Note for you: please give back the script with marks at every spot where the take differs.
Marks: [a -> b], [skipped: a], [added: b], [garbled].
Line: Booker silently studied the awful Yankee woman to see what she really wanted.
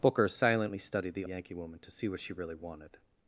Booker silently studied the [skipped: awful] Yankee woman to see what she really wanted.